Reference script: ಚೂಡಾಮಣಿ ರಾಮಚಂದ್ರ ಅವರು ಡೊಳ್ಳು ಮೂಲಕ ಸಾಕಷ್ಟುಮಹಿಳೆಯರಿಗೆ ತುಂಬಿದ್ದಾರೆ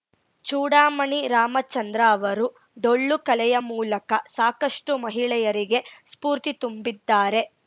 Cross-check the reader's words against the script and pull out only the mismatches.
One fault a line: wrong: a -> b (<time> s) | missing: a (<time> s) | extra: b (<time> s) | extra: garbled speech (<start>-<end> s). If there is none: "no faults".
extra: ಕಲೆಯ (3.3 s)
extra: ಸ್ಫೂರ್ತಿ (6.1 s)